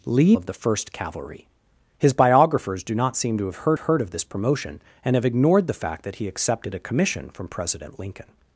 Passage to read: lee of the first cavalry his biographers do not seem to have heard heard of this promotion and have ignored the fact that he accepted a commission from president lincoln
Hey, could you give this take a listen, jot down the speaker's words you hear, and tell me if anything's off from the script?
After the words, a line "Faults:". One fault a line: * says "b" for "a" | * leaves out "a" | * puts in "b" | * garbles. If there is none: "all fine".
lee of the first cavalry his biographers do not seem to have heard heard of this promotion and have ignored the fact that he accepted a commission from president lincoln
Faults:
all fine